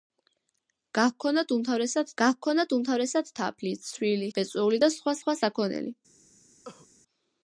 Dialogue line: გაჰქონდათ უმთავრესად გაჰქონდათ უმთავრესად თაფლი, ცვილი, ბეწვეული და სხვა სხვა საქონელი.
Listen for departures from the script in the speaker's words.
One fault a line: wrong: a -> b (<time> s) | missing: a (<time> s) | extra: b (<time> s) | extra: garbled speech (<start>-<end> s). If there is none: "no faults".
no faults